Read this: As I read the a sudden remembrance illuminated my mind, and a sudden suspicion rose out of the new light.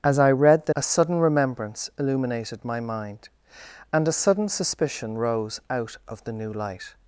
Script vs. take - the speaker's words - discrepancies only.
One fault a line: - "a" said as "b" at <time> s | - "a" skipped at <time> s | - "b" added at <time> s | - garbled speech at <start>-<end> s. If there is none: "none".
none